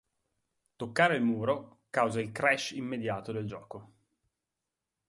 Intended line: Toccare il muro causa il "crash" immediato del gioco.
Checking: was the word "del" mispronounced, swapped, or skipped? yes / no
no